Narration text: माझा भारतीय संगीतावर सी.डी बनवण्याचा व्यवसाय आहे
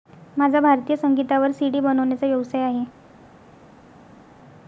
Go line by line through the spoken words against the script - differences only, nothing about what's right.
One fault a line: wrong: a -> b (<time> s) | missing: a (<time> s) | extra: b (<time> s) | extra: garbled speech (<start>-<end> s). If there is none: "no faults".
no faults